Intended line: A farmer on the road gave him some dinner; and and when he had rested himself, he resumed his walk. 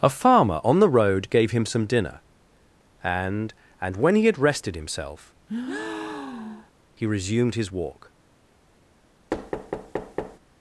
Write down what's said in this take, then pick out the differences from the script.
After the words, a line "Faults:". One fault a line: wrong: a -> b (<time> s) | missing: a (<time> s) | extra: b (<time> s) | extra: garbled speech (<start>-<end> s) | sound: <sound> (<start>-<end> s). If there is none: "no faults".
A farmer on the road gave him some dinner; and and when he had rested himself, he resumed his walk.
Faults:
sound: breath (5.5-6.7 s)
sound: thud (9.3-10.4 s)